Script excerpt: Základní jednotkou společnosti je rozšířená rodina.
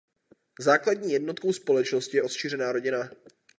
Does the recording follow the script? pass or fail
pass